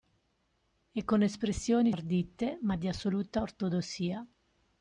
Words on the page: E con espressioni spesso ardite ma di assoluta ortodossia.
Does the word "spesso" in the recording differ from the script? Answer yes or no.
yes